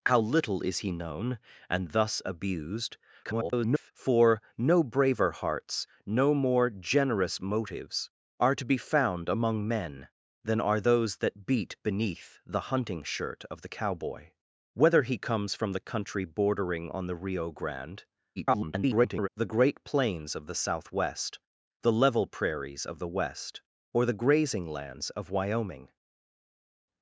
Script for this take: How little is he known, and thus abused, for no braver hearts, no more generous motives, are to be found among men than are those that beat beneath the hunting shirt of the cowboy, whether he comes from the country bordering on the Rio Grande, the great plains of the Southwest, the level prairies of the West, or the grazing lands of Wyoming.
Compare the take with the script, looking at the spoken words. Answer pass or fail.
fail